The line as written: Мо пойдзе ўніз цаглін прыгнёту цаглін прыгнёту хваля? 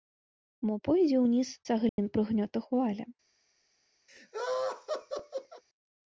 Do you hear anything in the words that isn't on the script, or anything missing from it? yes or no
yes